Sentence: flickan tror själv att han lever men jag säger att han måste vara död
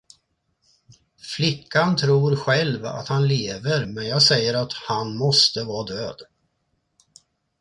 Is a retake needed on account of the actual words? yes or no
no